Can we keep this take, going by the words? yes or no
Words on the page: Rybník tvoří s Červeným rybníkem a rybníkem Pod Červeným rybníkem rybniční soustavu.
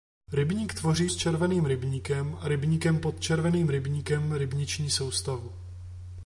yes